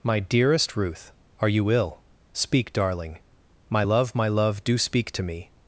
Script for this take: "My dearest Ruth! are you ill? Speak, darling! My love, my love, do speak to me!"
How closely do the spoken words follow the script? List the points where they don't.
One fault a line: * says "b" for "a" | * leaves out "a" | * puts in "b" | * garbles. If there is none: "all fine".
all fine